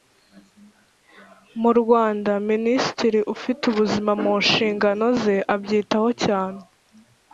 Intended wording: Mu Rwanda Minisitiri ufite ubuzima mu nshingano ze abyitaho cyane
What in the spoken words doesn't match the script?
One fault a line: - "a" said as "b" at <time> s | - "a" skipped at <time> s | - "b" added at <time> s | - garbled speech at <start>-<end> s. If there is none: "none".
none